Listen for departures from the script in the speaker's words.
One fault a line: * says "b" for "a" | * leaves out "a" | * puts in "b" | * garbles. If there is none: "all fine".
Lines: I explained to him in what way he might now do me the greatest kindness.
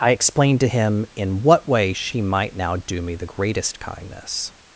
* says "she" for "he"